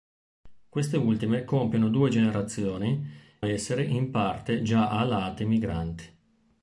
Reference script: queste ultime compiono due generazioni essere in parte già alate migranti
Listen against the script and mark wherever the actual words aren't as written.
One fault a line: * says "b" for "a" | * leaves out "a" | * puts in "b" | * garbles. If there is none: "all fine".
all fine